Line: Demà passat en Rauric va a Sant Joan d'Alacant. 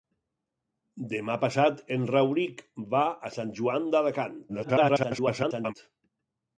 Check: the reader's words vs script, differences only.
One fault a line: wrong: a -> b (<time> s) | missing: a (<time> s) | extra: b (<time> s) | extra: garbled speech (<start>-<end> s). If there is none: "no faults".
extra: garbled speech (4.5-5.7 s)